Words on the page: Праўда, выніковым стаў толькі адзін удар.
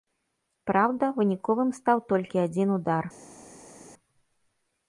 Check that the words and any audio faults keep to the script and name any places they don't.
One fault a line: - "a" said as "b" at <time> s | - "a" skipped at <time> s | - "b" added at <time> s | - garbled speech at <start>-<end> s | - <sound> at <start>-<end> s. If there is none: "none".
none